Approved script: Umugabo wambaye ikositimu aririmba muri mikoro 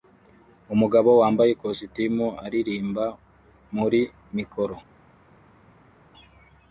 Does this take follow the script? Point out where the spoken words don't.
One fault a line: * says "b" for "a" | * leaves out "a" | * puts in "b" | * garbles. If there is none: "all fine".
all fine